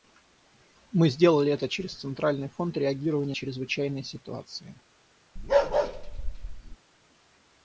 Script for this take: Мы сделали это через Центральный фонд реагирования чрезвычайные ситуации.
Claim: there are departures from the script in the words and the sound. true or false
true